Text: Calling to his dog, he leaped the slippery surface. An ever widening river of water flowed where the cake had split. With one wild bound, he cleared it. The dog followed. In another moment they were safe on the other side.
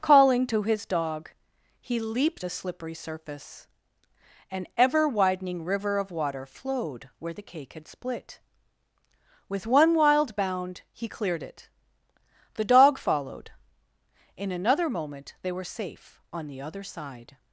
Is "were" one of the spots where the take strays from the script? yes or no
no